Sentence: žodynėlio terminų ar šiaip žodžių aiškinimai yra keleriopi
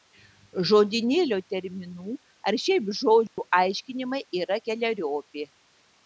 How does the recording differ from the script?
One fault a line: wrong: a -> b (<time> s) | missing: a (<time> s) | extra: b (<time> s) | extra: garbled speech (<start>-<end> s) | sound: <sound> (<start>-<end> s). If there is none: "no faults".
sound: dropout (3.3-3.4 s)